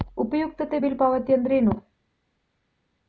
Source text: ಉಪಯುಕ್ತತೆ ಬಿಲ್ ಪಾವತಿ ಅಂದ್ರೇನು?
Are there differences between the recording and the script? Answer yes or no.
no